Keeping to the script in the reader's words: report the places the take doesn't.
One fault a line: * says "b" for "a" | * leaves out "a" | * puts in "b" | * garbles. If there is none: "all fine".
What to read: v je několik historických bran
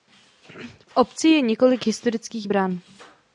* puts in "obci"